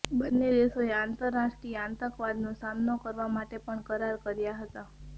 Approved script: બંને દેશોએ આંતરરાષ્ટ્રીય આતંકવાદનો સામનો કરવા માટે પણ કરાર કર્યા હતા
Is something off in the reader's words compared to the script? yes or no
no